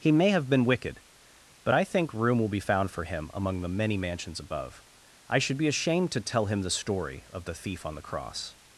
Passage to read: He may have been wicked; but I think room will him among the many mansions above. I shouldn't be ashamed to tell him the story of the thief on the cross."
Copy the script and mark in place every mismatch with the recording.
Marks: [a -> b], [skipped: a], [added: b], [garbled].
He may have been wicked; but I think room will [added: be found for] him among the many mansions above. I [shouldn't -> should] be ashamed to tell him the story of the thief on the cross."